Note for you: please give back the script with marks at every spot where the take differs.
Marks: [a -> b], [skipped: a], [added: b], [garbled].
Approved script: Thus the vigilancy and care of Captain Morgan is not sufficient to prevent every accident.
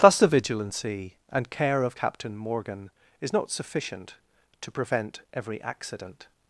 Thus the vigilancy and care of Captain Morgan is not sufficient to prevent every accident.